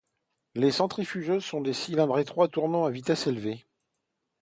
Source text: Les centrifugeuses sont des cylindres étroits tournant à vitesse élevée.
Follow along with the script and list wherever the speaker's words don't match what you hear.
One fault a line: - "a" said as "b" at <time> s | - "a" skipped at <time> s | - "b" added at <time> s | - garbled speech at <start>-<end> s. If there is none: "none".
none